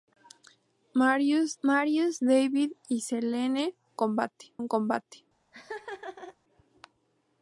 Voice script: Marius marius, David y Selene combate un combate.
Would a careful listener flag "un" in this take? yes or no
no